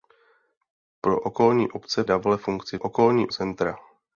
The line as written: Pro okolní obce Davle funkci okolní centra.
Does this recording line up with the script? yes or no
yes